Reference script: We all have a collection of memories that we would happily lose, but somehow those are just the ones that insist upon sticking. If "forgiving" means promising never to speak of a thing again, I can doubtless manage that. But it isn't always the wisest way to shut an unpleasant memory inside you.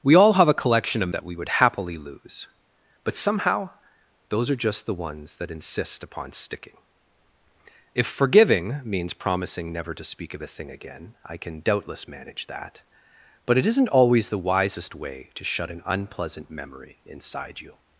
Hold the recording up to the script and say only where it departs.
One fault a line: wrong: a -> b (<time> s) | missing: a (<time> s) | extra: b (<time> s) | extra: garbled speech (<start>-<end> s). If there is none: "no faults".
missing: memories (1.1 s)